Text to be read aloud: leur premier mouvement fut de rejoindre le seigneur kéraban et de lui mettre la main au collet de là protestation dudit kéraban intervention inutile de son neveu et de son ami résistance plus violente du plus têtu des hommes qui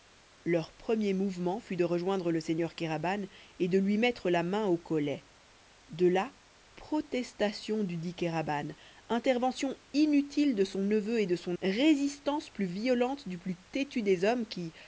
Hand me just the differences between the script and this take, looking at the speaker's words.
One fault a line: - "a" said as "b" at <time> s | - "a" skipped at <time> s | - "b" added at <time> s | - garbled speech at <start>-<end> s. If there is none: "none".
- "ami" skipped at 11.6 s